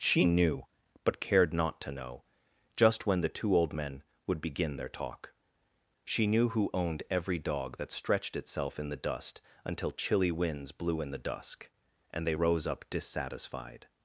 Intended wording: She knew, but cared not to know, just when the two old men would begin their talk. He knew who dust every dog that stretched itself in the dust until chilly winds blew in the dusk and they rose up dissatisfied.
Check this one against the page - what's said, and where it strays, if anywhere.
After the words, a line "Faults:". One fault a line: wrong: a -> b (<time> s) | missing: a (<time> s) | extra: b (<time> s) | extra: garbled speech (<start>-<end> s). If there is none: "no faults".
She knew, but cared not to know, just when the two old men would begin their talk. She knew who owned every dog that stretched itself in the dust until chilly winds blew in the dusk and they rose up dissatisfied.
Faults:
wrong: He -> She (6.0 s)
wrong: dust -> owned (6.7 s)